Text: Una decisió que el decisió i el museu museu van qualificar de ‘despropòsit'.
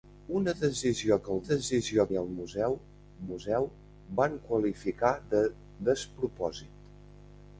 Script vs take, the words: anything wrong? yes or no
no